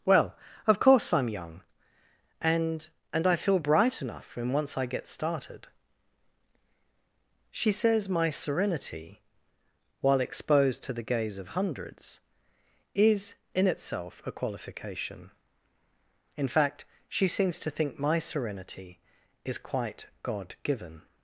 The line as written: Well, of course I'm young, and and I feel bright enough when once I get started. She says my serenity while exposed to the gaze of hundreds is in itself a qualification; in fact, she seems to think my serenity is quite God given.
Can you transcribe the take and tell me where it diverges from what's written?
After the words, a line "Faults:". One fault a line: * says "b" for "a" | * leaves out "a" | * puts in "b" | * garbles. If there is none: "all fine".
Well, of course I'm young, and and I feel bright enough when once I get started. She says my serenity while exposed to the gaze of hundreds is in itself a qualification; in fact, she seems to think my serenity is quite God given.
Faults:
all fine